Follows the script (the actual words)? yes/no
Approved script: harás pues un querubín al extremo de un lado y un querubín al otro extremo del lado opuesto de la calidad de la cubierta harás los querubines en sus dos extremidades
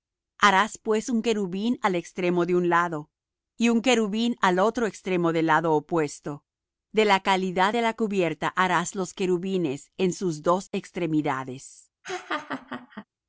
yes